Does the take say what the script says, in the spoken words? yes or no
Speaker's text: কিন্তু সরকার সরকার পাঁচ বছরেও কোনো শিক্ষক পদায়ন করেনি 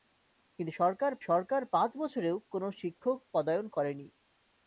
yes